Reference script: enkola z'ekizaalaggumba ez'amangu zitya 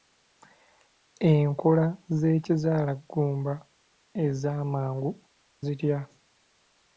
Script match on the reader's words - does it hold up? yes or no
yes